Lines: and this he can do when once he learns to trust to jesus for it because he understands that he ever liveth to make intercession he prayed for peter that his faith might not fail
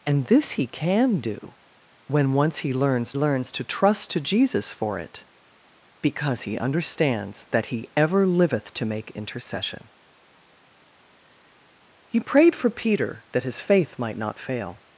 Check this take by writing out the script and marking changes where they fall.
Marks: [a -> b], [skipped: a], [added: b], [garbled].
and this he can do when once he learns [added: learns] to trust to jesus for it because he understands that he ever liveth to make intercession he prayed for peter that his faith might not fail